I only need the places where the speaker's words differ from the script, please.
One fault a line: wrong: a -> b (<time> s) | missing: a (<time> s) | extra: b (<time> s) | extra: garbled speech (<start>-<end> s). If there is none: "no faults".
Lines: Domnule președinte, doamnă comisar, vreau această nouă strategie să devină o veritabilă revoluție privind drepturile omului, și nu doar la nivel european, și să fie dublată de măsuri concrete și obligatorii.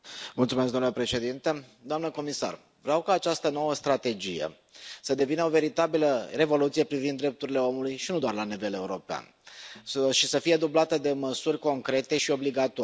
extra: ca (3.0 s)